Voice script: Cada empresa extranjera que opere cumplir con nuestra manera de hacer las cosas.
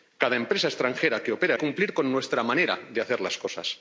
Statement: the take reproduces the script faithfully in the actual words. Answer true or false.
true